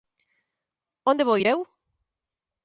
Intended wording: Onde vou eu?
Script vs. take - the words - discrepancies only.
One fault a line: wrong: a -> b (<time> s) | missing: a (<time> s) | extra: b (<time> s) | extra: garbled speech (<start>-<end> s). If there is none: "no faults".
extra: ir (1.4 s)